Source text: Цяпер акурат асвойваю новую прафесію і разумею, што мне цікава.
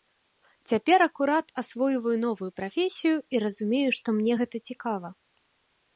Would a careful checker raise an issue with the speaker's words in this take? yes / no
yes